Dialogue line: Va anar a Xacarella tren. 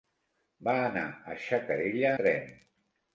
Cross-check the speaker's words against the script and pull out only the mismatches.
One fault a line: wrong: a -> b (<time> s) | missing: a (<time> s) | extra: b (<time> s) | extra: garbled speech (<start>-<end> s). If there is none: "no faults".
no faults